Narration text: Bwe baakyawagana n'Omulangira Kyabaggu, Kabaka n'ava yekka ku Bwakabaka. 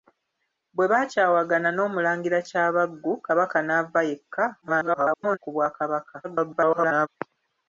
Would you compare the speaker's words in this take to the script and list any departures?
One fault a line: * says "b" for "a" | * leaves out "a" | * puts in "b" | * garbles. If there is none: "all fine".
* garbles
* garbles